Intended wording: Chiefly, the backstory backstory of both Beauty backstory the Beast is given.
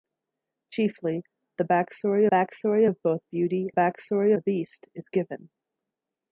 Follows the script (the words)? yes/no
yes